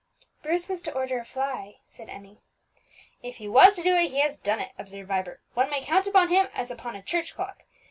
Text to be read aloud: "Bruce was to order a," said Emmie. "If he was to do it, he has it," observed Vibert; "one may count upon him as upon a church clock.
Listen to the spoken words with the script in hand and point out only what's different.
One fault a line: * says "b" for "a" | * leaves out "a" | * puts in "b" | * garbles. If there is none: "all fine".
* puts in "fly"
* puts in "done"